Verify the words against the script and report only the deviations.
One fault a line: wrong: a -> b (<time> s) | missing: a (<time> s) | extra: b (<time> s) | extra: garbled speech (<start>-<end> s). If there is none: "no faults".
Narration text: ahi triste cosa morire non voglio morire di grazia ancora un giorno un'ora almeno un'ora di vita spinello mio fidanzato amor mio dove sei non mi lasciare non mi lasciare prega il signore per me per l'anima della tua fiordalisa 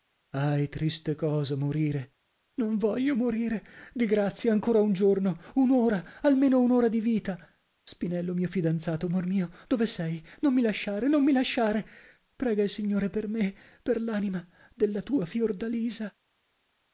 no faults